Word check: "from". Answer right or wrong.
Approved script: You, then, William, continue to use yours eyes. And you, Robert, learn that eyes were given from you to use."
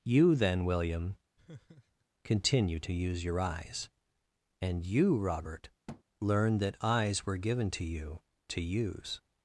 wrong